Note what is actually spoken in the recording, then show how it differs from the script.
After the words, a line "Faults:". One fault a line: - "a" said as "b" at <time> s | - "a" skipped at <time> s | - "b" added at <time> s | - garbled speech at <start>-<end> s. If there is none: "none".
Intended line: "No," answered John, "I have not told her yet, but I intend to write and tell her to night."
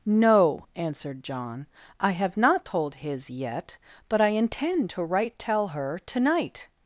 "No," answered John, "I have not told his yet, but I intend to write tell her to night."
Faults:
- "her" said as "his" at 2.9 s
- "and" skipped at 5.4 s